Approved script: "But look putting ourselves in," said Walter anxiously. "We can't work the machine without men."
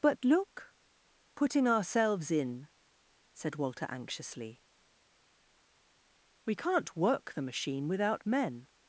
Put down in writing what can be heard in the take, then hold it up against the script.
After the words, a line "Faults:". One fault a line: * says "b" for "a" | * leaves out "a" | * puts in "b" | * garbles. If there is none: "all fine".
"But look putting ourselves in," said Walter anxiously. "We can't work the machine without men."
Faults:
all fine